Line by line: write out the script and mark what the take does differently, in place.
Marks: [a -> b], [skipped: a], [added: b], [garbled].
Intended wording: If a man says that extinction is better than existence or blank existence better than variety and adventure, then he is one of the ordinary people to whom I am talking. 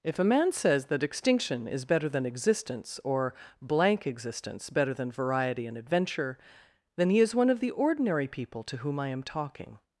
If a man says that extinction is better than existence or blank existence better than variety and adventure, then he is one of the ordinary people to whom I am talking.